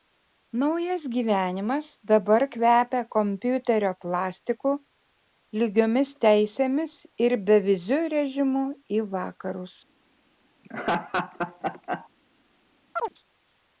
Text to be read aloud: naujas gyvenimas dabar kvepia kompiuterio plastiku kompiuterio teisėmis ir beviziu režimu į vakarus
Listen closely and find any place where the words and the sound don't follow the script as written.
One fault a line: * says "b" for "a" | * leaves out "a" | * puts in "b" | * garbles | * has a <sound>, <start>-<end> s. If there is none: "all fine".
* says "lygiomis" for "kompiuterio"
* has a laugh, 10.6-12.1 s
* has a chirp, 12.9-13.1 s